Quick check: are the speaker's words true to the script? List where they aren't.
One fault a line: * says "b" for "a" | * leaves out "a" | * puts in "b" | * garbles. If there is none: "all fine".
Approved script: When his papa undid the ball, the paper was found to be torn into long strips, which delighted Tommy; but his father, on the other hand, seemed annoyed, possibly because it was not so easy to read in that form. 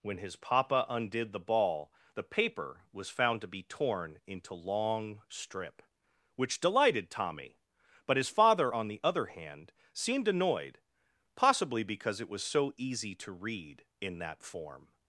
* says "strip" for "strips"
* leaves out "not"